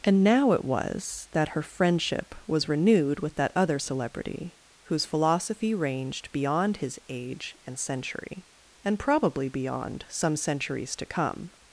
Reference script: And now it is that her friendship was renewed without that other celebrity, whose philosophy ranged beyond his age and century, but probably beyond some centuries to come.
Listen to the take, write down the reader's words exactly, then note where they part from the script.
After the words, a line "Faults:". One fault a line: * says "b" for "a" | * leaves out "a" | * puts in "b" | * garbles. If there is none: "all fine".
And now it was that her friendship was renewed with that other celebrity, whose philosophy ranged beyond his age and century, and probably beyond some centuries to come.
Faults:
* says "was" for "is"
* says "with" for "without"
* says "and" for "but"